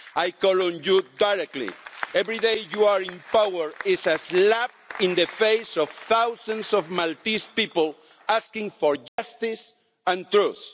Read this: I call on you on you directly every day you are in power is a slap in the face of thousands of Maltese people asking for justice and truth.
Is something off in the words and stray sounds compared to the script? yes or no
yes